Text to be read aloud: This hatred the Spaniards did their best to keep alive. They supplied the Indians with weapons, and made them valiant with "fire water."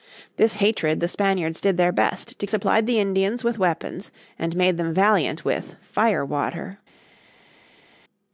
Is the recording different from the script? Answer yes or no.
yes